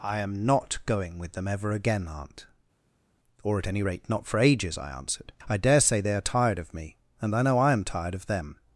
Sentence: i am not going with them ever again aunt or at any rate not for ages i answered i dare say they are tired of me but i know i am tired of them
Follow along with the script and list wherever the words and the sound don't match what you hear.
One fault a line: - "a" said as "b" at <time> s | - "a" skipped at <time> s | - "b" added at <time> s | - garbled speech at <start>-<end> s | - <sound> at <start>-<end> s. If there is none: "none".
- "but" said as "and" at 7.2 s